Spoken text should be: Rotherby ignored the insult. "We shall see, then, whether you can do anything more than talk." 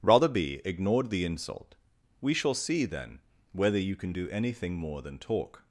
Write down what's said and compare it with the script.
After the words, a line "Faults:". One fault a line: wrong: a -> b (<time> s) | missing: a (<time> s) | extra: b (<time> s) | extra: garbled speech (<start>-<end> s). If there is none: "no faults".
Rotherby ignored the insult. "We shall see, then, whether you can do anything more than talk."
Faults:
no faults